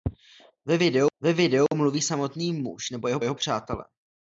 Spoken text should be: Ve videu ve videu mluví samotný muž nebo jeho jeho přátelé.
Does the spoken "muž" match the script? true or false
true